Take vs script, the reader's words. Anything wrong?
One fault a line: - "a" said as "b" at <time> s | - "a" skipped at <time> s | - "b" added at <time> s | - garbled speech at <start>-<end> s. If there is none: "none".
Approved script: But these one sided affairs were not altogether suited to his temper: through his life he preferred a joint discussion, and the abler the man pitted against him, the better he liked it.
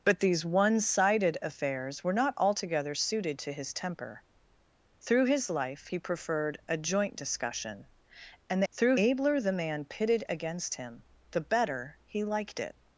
- "the" said as "through" at 8.7 s